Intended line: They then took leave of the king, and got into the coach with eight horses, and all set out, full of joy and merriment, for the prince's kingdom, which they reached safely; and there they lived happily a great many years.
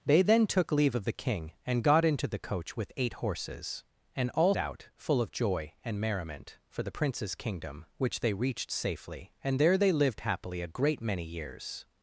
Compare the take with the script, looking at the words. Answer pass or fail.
fail